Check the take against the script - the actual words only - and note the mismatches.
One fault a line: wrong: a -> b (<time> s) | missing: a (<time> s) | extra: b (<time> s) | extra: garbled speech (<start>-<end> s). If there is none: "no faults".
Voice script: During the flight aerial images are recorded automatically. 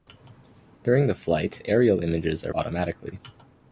missing: recorded (2.5 s)